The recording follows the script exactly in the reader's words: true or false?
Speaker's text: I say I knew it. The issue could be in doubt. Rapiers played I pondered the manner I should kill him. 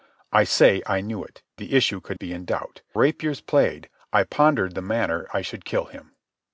true